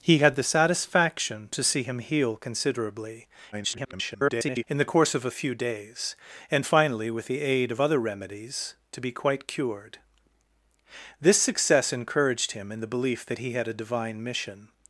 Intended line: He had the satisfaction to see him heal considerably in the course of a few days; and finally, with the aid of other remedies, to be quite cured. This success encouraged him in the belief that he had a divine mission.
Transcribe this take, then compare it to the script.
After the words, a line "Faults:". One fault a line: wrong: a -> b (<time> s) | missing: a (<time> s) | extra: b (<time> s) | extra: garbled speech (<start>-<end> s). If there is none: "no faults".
He had the satisfaction to see him heal considerably [garbled] in the course of a few days; and finally, with the aid of other remedies, to be quite cured. This success encouraged him in the belief that he had a divine mission.
Faults:
extra: garbled speech (3.5-4.6 s)